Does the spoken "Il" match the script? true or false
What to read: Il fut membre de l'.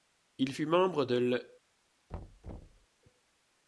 true